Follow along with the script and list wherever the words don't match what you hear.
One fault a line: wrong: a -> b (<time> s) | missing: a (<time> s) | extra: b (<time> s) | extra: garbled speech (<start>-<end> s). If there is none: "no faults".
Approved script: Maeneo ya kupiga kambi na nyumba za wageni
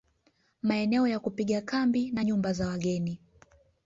no faults